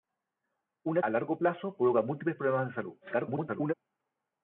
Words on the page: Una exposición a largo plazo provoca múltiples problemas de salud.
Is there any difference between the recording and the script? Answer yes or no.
yes